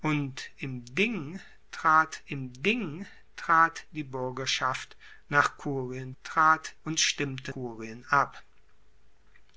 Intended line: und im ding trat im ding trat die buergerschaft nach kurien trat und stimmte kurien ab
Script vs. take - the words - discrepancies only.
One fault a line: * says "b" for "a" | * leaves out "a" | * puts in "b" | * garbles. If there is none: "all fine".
all fine